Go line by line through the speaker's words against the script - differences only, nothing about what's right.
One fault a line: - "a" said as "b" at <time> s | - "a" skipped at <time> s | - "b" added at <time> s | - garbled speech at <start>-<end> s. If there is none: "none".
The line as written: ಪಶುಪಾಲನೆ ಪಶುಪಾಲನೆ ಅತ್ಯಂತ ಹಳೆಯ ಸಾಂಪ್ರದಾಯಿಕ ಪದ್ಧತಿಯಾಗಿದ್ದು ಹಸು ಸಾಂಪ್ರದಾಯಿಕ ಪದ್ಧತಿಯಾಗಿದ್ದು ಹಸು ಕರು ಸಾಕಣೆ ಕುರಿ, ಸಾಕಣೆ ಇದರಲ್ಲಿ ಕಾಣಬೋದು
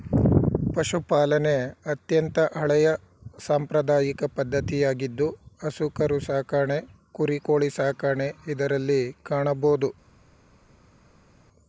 - "ಪಶುಪಾಲನೆ" skipped at 1.5 s
- "ಸಾಂಪ್ರದಾಯಿಕ ಪದ್ಧತಿಯಾಗಿದ್ದು ಹಸು" skipped at 5.9 s
- "ಕೋಳಿ" added at 7.5 s